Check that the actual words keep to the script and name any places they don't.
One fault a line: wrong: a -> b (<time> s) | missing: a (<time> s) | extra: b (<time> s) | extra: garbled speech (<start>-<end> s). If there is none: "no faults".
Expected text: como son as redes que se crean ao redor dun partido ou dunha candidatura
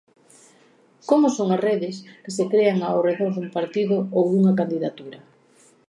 no faults